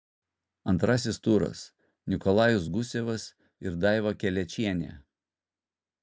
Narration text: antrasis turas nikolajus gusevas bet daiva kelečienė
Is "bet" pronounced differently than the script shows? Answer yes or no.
yes